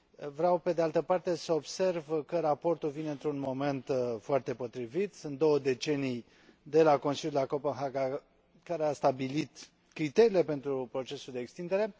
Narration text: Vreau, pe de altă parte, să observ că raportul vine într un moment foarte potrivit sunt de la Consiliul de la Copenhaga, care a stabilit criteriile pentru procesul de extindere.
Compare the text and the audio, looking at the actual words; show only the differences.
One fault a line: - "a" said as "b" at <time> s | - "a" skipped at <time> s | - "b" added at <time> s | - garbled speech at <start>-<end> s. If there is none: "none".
- "două decenii" added at 5.4 s